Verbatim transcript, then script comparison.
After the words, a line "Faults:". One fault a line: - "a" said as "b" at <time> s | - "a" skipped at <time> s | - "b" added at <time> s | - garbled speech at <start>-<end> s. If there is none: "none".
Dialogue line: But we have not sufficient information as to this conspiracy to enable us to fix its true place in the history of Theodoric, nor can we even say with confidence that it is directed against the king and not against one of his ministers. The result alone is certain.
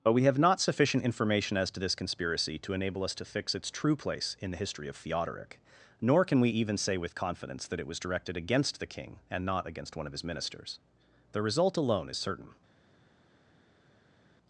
But we have not sufficient information as to this conspiracy to enable us to fix its true place in the history of Theodoric, nor can we even say with confidence that it was directed against the king and not against one of his ministers. The result alone is certain.
Faults:
- "is" said as "was" at 7.9 s